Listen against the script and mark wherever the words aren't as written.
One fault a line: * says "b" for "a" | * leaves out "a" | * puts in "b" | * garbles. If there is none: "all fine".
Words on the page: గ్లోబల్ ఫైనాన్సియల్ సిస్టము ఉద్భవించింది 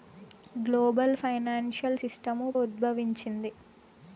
all fine